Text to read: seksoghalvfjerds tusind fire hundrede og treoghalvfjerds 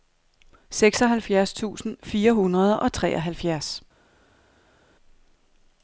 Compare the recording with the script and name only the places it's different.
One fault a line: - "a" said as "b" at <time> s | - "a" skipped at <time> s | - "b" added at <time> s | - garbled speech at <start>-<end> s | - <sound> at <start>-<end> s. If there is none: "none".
none